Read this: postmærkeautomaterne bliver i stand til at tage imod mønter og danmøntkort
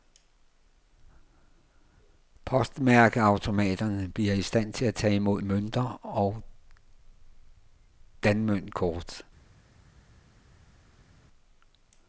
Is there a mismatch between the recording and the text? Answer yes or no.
no